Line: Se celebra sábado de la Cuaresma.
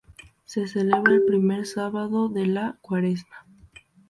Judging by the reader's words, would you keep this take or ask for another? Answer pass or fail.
fail